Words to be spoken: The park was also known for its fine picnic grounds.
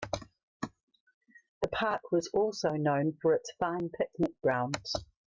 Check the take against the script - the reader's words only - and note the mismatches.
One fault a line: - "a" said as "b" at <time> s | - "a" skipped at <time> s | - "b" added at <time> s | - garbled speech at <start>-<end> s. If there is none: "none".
none